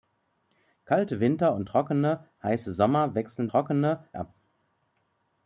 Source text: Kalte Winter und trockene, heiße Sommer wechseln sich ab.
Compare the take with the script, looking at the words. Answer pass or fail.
fail